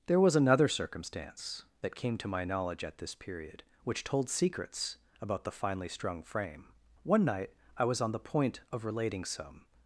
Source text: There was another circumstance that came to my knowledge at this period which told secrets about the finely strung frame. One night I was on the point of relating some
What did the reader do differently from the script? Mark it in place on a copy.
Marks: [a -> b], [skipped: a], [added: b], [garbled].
There was another circumstance that came to my knowledge at this period which told secrets about the finely strung frame. One night I was on the point of relating some